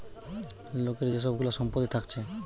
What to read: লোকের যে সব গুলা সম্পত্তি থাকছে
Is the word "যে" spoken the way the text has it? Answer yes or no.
yes